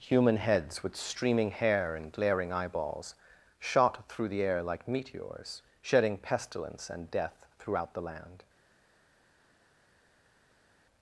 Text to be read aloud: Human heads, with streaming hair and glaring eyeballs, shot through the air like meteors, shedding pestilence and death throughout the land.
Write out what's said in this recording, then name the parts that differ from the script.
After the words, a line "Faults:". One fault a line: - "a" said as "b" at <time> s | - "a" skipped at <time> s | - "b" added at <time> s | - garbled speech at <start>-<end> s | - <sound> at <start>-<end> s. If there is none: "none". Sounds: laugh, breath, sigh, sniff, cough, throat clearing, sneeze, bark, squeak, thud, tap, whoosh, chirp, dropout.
Human heads, with streaming hair and glaring eyeballs, shot through the air like meteors, shedding pestilence and death throughout the land.
Faults:
none